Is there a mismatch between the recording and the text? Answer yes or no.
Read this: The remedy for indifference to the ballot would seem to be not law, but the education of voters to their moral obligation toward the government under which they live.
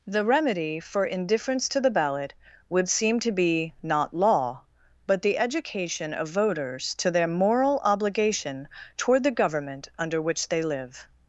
no